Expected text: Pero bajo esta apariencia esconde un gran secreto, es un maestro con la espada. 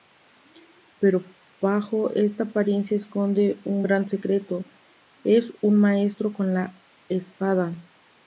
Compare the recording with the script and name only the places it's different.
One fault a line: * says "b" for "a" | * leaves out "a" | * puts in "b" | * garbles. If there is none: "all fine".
all fine